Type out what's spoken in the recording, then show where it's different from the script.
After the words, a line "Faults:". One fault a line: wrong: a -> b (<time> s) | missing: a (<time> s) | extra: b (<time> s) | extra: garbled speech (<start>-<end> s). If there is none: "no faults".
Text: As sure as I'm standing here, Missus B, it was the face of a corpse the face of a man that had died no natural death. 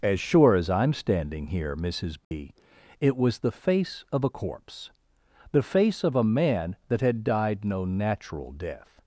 As sure as I'm standing here, Missus B, it was the face of a corpse the face of a man that had died no natural death.
Faults:
no faults